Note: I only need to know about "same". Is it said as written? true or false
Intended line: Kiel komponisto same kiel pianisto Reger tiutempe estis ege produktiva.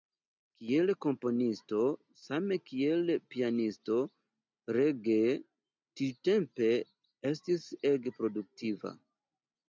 true